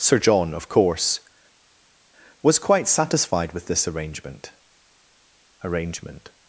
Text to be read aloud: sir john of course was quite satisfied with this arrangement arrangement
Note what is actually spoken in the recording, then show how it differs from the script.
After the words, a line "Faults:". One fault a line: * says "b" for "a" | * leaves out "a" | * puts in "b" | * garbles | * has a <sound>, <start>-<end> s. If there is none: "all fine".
sir john of course was quite satisfied with this arrangement arrangement
Faults:
all fine